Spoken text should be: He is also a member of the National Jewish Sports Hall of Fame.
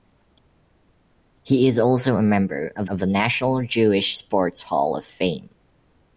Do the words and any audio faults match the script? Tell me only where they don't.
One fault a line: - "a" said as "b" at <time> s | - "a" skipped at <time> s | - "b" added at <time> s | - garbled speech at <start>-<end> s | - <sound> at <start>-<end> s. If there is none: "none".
- "of" added at 2.9 s